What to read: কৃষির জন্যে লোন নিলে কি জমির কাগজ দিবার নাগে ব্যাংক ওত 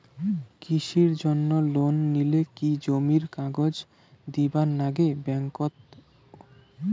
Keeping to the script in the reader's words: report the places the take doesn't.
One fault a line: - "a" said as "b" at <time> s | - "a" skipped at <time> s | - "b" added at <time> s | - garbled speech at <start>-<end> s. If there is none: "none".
none